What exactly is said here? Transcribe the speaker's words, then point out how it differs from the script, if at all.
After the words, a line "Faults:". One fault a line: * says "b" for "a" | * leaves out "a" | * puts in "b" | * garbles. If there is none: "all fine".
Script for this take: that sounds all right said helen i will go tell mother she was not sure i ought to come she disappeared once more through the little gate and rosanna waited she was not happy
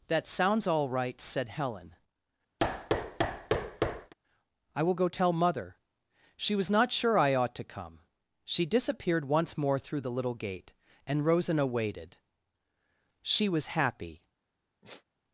that sounds all right said helen i will go tell mother she was not sure i ought to come she disappeared once more through the little gate and rosanna waited she was happy
Faults:
* leaves out "not"